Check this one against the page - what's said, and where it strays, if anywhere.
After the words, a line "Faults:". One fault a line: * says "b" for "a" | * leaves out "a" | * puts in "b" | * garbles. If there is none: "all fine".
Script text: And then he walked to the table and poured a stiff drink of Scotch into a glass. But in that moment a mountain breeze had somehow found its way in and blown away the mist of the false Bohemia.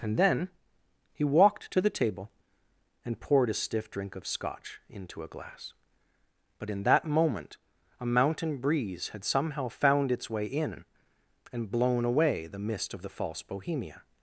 And then he walked to the table and poured a stiff drink of Scotch into a glass. But in that moment a mountain breeze had somehow found its way in and blown away the mist of the false Bohemia.
Faults:
all fine